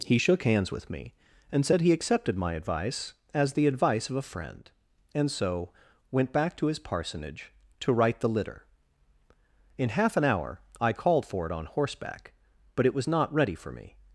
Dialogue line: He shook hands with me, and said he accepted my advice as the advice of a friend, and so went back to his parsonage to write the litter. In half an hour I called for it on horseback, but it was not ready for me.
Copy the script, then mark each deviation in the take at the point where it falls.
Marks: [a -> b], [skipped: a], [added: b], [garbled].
He shook hands with me, and said he accepted my advice as the advice of a friend, and so went back to his parsonage to write the litter. In half an hour I called for it on horseback, but it was not ready for me.